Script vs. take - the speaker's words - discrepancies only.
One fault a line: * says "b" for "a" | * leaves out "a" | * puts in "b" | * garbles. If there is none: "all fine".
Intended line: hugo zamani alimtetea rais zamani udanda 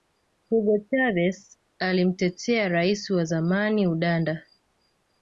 * says "chavez" for "zamani"
* puts in "wa"